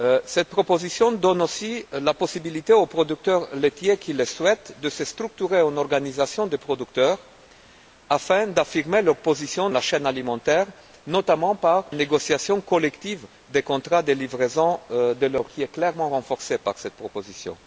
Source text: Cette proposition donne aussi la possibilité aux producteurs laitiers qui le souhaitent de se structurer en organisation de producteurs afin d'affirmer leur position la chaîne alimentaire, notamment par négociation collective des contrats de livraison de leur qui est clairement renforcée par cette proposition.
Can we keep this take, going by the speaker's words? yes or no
yes